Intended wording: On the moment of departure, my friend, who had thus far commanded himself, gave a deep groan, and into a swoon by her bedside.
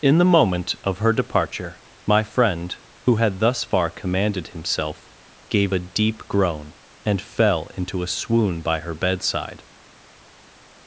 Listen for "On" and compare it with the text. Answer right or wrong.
wrong